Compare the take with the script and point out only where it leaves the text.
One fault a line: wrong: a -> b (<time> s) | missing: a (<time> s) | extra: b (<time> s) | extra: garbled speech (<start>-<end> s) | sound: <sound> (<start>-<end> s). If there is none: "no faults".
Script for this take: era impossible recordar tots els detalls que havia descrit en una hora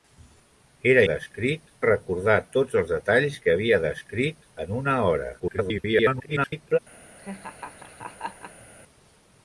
wrong: impossible -> descrit (1.1 s)
extra: garbled speech (5.4-6.8 s)
sound: laugh (7.2-8.7 s)